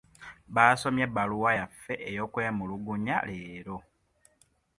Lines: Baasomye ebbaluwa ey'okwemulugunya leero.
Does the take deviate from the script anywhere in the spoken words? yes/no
yes